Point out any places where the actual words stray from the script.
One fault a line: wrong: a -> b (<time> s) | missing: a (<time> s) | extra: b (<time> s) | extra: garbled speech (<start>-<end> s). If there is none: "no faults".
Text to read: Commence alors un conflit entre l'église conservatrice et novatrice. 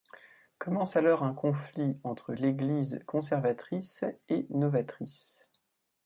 no faults